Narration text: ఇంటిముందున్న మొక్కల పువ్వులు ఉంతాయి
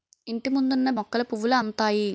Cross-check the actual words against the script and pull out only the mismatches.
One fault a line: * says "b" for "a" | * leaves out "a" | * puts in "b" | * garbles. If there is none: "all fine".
all fine